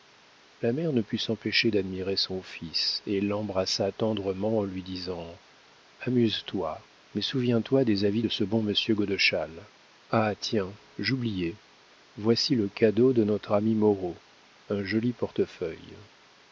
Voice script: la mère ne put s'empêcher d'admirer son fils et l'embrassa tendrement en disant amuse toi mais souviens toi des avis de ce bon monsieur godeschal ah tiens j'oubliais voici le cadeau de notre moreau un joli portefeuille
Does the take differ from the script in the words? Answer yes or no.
yes